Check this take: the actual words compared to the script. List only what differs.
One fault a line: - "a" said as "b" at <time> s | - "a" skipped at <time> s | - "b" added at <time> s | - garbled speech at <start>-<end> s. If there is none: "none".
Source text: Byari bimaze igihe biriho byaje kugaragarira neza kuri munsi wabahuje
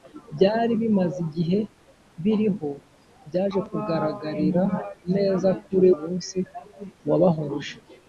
none